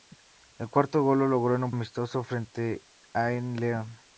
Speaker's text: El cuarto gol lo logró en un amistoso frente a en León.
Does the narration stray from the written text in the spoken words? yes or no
no